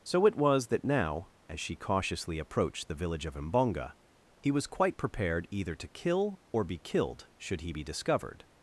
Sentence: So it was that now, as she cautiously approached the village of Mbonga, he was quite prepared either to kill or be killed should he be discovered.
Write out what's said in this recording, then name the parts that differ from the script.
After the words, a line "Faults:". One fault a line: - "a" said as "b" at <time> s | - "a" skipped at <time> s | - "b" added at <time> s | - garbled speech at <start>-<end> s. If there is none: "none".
So it was that now, as she cautiously approached the village of Mbonga, he was quite prepared either to kill or be killed should he be discovered.
Faults:
none